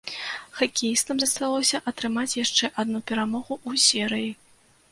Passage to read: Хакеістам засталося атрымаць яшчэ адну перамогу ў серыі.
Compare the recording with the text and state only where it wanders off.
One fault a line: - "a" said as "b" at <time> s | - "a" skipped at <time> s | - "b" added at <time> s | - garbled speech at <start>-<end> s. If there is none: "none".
none